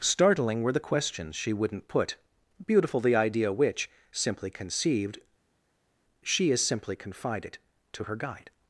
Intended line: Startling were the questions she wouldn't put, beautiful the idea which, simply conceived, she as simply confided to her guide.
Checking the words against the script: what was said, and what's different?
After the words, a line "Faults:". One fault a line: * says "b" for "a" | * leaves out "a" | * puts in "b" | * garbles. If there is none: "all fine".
Startling were the questions she wouldn't put, beautiful the idea which, simply conceived, she as simply confided to her guide.
Faults:
all fine